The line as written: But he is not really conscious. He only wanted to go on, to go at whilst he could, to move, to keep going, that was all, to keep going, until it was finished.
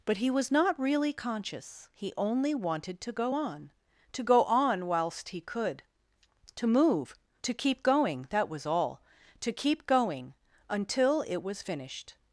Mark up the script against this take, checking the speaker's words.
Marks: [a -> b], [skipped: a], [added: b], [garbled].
But he [is -> was] not really conscious. He only wanted to go on, to go [at -> on] whilst he could, to move, to keep going, that was all, to keep going, until it was finished.